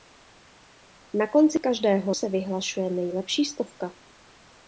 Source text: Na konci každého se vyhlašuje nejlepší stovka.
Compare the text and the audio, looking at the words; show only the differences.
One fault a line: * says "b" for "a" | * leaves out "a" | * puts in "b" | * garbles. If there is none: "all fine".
all fine